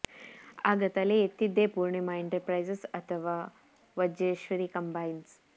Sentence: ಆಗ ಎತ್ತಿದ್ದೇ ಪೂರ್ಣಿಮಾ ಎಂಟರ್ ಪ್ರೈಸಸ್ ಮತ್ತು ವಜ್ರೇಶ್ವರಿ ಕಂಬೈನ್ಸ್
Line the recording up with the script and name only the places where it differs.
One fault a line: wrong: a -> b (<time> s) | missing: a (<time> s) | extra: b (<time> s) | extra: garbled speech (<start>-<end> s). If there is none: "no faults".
extra: ತಲೆ (0.9 s)
wrong: ಮತ್ತು -> ಅಥವಾ (2.9 s)